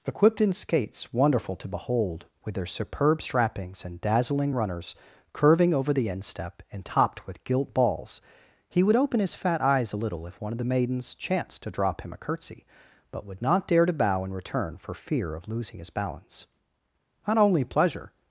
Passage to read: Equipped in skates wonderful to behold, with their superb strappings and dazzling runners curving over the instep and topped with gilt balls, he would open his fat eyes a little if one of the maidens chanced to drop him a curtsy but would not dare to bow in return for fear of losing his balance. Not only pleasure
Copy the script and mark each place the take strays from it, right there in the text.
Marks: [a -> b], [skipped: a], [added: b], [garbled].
Equipped in skates wonderful to behold, with their superb strappings and dazzling runners curving over the instep and topped with gilt balls, he would open his fat eyes a little if one of the maidens chanced to drop him a curtsy but would not dare to bow in return for fear of losing his balance. Not only pleasure